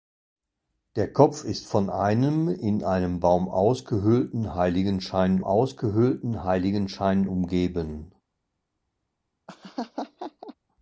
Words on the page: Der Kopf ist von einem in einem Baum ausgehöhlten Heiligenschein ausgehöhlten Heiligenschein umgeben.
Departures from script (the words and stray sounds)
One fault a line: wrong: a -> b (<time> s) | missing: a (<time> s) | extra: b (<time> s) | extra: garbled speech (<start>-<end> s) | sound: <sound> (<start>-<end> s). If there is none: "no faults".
sound: laugh (9.5-10.5 s)